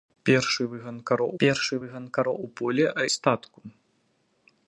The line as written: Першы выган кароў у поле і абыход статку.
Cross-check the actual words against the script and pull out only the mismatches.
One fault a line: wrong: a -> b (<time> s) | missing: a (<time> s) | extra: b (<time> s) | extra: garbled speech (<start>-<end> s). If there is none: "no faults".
extra: першы выган кароў (1.4 s)
missing: і абыход (2.9 s)